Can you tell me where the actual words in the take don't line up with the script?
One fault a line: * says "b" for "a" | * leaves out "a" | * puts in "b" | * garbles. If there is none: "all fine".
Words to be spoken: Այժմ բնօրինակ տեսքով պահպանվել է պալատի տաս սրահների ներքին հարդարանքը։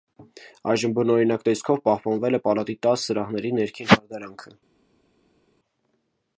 all fine